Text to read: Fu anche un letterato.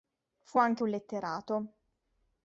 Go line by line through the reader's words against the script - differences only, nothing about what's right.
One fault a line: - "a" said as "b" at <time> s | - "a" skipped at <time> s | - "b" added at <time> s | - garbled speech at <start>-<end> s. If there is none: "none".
none